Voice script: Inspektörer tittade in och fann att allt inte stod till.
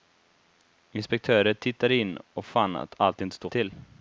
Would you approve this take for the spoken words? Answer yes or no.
yes